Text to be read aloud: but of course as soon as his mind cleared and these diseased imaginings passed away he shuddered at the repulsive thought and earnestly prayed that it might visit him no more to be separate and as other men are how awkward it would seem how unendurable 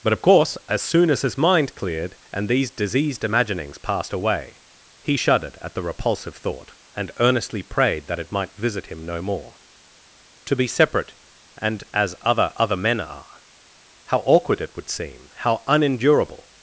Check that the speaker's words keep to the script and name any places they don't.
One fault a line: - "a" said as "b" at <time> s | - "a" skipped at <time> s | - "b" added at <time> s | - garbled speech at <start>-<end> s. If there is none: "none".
- "other" added at 12.5 s